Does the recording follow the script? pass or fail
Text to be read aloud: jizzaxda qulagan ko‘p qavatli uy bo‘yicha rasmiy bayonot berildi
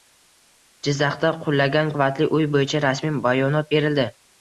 fail